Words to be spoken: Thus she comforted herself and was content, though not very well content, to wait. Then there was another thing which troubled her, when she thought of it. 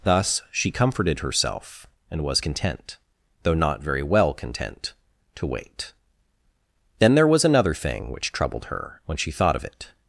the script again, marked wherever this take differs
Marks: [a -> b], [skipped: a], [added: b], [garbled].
Thus she comforted herself and was content, though not very well content, to wait. Then there was another thing which troubled her, when she thought of it.